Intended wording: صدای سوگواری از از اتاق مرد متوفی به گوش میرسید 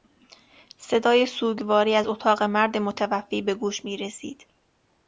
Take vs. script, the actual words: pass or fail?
fail